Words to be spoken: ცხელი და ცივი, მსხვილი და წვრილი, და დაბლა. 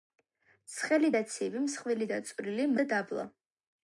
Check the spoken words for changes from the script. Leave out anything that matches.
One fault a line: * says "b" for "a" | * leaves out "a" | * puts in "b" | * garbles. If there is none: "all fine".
all fine